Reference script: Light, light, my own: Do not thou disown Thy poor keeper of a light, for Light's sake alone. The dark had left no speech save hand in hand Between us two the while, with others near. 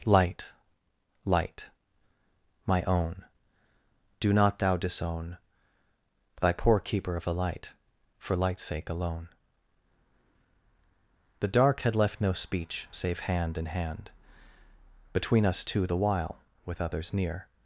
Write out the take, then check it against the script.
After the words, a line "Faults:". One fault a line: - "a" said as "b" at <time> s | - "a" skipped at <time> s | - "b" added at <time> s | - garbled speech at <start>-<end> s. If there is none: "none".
Light, light, my own: Do not thou disown Thy poor keeper of a light, for Light's sake alone. The dark had left no speech save hand in hand Between us two the while, with others near.
Faults:
none